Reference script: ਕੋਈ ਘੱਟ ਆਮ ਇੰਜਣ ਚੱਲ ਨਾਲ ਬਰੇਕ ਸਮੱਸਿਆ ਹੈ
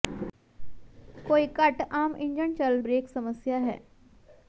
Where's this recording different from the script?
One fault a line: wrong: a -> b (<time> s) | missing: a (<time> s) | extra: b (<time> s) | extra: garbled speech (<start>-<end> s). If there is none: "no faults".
missing: ਨਾਲ (2.8 s)